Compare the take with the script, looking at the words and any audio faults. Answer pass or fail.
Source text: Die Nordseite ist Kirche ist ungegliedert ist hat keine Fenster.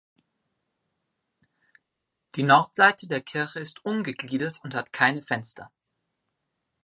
fail